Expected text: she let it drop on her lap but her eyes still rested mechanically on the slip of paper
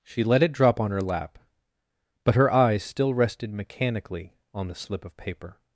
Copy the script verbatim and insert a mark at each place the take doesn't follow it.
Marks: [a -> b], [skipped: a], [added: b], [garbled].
she let it drop on her lap but her eyes still rested mechanically on the slip of paper